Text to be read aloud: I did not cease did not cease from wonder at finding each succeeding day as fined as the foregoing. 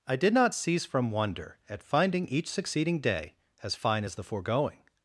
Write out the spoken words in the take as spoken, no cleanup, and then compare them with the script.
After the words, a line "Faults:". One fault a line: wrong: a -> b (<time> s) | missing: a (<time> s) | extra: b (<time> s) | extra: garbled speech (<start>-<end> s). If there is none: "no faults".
I did not cease from wonder at finding each succeeding day as fine as the foregoing.
Faults:
missing: did not cease (0.8 s)
wrong: fined -> fine (3.7 s)